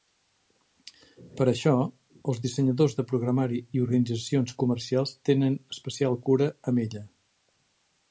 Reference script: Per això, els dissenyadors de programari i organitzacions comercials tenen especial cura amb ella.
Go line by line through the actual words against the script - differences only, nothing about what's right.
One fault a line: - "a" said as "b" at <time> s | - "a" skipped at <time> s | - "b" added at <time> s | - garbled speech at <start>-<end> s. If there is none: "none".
none